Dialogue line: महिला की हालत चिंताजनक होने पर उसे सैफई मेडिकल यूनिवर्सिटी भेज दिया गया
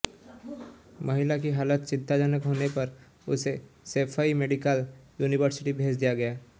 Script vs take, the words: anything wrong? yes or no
no